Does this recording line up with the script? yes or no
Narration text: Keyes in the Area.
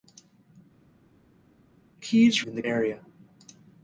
yes